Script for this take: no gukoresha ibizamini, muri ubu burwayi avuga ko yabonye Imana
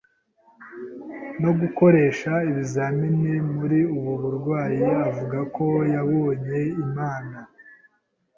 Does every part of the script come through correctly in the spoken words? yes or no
yes